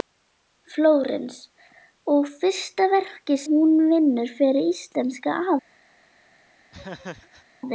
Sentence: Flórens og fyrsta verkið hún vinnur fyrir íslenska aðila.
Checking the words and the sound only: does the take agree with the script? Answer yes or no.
no